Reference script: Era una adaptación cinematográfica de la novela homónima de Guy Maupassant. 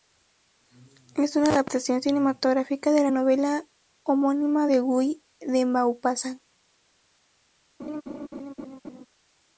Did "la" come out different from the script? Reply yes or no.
no